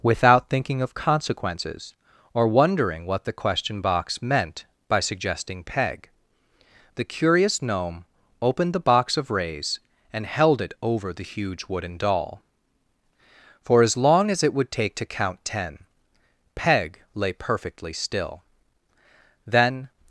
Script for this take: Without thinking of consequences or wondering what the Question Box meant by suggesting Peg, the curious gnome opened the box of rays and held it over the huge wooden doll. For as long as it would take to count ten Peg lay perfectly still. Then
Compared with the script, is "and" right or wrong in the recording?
right